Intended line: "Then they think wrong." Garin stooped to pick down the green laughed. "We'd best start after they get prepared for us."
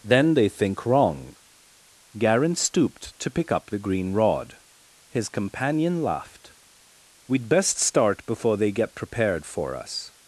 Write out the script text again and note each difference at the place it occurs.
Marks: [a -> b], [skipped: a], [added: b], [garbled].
"Then they think wrong." Garin stooped to pick [down -> up] the green [added: rod His companion] laughed. "We'd best start [after -> before] they get prepared for us."